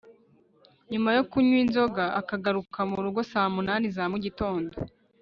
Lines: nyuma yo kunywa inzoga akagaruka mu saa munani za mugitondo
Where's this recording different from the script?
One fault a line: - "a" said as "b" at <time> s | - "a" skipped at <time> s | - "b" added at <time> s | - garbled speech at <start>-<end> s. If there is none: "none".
- "rugo" added at 3.0 s